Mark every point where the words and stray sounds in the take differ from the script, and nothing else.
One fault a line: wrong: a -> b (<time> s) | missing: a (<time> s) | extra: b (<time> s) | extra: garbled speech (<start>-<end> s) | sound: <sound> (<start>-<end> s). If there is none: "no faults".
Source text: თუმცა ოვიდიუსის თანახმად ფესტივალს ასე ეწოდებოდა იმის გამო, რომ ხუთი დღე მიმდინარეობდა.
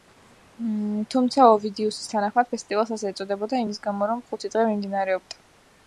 no faults